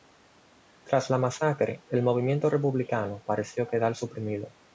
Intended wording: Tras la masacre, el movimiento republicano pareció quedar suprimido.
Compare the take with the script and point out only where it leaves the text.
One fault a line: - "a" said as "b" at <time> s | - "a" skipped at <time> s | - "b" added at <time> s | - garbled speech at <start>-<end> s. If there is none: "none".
none